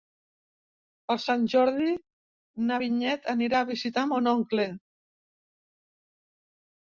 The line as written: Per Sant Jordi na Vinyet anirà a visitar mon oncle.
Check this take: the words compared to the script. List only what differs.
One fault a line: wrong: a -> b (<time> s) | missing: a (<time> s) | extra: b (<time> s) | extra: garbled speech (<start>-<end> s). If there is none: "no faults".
no faults